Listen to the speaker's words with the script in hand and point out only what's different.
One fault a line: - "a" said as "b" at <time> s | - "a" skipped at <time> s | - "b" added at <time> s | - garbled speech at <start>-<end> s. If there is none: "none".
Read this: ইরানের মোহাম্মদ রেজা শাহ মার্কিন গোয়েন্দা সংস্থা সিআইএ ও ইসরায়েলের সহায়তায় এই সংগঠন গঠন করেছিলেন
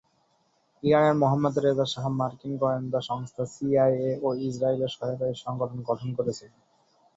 none